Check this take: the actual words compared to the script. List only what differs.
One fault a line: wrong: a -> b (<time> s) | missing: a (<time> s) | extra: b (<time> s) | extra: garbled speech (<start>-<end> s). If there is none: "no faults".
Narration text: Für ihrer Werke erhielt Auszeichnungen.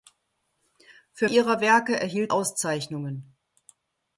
no faults